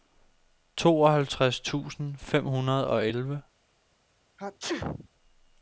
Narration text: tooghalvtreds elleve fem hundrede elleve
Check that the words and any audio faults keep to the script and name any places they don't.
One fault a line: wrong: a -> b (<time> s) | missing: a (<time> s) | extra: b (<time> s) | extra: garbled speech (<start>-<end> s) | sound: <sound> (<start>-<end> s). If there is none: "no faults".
wrong: elleve -> tusind (1.6 s)
extra: og (2.9 s)
sound: sneeze (4.4-5.1 s)